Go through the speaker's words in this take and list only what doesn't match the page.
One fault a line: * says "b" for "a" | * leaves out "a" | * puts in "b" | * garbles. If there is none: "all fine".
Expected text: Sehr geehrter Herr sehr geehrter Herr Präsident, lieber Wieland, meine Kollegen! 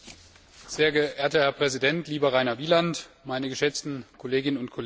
* leaves out "sehr geehrter Herr"
* puts in "Rainer"
* puts in "geschätzten Kolleginnen und"